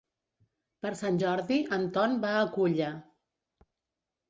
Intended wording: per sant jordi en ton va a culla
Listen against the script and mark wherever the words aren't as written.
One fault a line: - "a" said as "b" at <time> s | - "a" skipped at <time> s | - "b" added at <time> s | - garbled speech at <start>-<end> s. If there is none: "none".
none